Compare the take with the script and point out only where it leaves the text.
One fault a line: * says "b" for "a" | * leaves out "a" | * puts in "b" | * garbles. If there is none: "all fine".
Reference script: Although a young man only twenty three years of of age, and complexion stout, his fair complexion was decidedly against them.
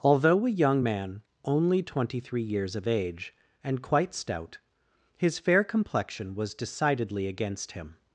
* leaves out "of"
* says "quite" for "complexion"
* says "him" for "them"